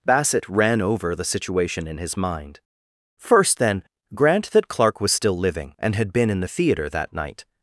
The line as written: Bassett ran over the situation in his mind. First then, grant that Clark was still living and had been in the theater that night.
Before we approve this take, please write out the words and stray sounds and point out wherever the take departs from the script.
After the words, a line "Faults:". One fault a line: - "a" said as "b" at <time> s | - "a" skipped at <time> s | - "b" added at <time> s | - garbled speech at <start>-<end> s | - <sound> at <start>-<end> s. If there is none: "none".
Bassett ran over the situation in his mind. First then, grant that Clark was still living and had been in the theater that night.
Faults:
none